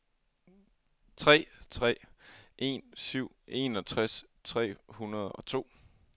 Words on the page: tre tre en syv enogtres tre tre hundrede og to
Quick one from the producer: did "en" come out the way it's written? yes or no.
yes